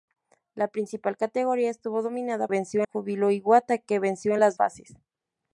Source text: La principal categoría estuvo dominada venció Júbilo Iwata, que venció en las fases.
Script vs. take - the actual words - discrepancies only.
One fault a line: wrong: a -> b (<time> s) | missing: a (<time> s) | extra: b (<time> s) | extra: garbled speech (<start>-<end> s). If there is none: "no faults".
no faults